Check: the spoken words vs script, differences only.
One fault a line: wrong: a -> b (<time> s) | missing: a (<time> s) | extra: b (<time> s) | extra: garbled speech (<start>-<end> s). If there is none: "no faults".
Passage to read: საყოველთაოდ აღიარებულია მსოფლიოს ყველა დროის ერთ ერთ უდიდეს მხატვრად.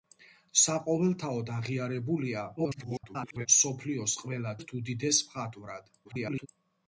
extra: garbled speech (2.6-3.5 s)
missing: დროის ერთ (4.6 s)
extra: garbled speech (6.0-6.5 s)